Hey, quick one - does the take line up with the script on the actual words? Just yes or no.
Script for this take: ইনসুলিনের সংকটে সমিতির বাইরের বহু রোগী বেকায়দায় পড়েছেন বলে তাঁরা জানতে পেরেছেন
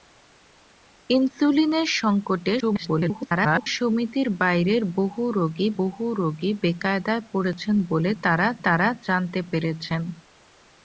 no